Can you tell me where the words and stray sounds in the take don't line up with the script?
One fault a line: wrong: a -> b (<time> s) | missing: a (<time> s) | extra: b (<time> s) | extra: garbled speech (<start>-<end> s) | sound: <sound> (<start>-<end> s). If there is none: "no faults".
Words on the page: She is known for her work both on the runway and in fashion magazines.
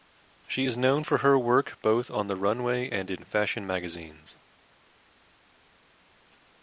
no faults